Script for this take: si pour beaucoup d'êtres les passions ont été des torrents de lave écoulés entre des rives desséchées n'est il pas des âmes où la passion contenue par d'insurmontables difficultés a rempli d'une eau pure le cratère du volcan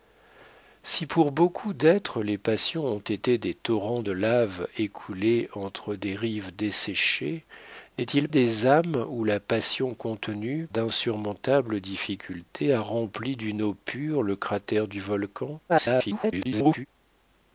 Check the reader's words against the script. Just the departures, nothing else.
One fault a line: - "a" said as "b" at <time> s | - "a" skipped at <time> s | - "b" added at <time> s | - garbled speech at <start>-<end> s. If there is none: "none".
- "pas" skipped at 8.3 s
- "par" skipped at 10.7 s
- garbled speech at 15.7-16.9 s